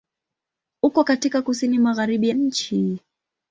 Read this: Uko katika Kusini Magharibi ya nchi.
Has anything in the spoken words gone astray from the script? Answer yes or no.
yes